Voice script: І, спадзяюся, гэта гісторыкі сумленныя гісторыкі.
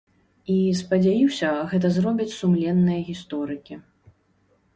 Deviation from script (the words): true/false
true